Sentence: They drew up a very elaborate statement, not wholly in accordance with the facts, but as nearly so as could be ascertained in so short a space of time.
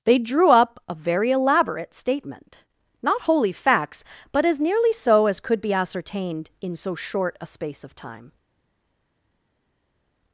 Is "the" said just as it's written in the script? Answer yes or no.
no